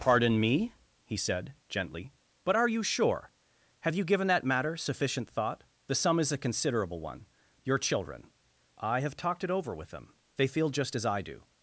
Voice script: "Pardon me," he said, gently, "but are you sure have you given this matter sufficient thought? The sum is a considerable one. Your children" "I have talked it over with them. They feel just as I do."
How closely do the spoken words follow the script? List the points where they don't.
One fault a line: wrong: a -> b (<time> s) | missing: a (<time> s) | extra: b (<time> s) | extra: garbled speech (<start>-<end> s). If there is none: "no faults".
wrong: this -> that (4.2 s)